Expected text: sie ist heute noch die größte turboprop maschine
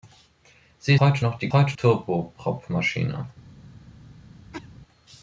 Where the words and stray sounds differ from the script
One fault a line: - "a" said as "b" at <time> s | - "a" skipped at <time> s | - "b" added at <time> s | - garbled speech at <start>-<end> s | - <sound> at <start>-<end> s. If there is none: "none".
- "ist" skipped at 0.9 s
- "größte" said as "heute" at 1.5 s
- cough at 4.5-4.8 s